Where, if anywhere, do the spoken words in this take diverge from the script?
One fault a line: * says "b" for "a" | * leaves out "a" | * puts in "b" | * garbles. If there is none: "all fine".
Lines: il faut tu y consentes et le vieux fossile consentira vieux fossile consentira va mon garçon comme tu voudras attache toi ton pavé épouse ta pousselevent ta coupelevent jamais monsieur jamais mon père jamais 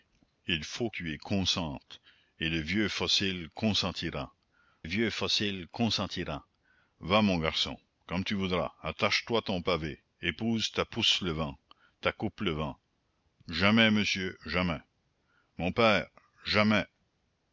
all fine